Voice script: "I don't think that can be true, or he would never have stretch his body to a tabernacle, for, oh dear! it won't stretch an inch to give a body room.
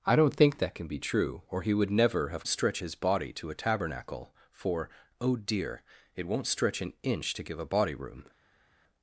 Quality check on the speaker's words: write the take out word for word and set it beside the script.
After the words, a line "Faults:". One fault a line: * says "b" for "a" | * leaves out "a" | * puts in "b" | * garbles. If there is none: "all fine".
"I don't think that can be true, or he would never have stretch his body to a tabernacle, for, oh dear! it won't stretch an inch to give a body room.
Faults:
all fine